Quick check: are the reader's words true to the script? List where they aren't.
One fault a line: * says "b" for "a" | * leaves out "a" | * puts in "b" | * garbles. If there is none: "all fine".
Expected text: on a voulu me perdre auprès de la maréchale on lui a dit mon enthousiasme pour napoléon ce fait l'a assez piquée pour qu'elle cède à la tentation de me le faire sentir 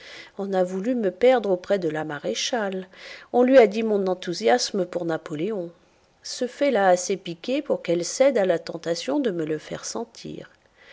all fine